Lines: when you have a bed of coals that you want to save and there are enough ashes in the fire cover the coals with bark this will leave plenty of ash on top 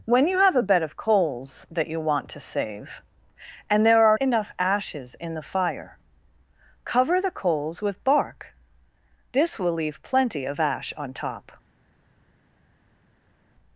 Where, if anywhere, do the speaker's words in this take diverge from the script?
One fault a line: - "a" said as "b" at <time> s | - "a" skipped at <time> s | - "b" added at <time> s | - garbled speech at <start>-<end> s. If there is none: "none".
none